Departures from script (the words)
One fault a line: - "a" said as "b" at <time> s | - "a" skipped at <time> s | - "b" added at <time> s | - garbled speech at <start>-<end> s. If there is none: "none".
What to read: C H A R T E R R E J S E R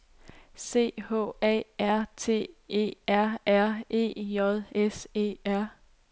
none